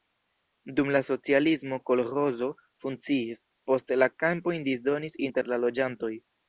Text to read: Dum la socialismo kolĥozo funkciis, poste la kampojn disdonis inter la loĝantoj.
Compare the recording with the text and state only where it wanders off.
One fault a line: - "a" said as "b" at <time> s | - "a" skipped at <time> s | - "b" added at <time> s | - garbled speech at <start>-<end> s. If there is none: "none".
none